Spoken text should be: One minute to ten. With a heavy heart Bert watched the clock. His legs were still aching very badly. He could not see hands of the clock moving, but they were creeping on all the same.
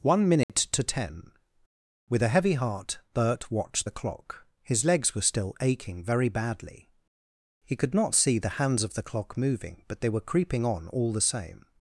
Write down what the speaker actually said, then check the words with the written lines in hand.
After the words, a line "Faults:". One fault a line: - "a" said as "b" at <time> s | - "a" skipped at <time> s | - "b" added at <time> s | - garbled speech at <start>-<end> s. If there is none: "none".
One minute to ten. With a heavy heart Bert watched the clock. His legs were still aching very badly. He could not see the hands of the clock moving, but they were creeping on all the same.
Faults:
- "the" added at 8.4 s